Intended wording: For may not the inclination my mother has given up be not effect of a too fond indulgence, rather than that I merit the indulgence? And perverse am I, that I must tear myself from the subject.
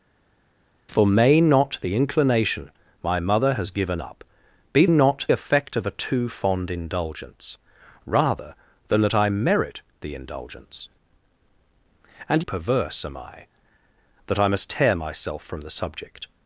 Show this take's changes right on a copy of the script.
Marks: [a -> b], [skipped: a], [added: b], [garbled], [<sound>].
For may not the inclination my mother has given up be not effect of a too fond indulgence, rather than that I merit the indulgence? And perverse am I, that I must tear myself from the subject.